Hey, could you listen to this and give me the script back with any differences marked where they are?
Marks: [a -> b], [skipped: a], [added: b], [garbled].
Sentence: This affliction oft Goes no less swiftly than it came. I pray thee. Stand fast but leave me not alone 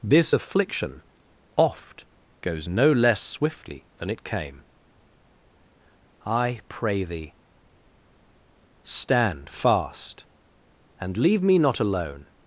This affliction oft Goes no less swiftly than it came. I pray thee. Stand fast [but -> and] leave me not alone